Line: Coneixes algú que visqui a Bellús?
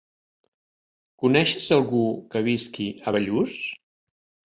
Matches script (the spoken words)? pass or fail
pass